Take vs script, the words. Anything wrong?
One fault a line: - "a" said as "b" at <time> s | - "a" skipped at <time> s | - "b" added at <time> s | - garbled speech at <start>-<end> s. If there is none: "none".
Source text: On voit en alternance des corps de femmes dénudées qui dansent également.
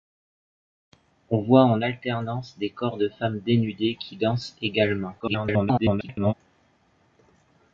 - garbled speech at 5.2-6.3 s